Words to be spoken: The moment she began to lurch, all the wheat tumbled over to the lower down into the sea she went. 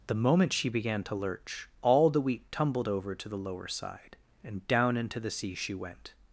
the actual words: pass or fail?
fail